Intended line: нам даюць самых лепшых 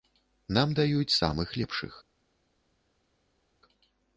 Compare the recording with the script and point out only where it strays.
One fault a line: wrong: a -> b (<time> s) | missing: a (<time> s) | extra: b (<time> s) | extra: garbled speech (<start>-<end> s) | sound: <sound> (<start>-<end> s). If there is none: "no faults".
no faults